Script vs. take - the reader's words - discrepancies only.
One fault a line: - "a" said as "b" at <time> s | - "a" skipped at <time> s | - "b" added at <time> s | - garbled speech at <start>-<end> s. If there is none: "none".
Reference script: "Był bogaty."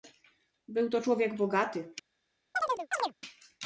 - "to człowiek" added at 0.9 s